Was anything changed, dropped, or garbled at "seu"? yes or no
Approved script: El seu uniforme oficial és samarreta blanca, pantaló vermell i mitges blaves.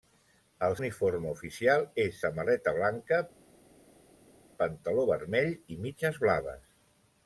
yes